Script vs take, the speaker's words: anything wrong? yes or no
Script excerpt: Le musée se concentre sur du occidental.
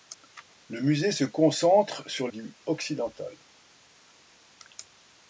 no